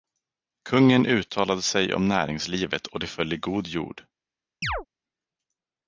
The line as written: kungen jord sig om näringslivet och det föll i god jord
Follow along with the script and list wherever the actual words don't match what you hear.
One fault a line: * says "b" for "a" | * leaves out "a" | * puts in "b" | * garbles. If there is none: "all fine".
* says "uttalade" for "jord"